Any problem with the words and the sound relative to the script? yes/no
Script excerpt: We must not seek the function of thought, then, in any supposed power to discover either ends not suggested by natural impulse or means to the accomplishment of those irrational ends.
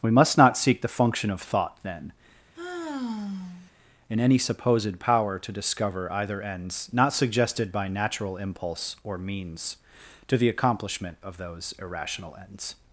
yes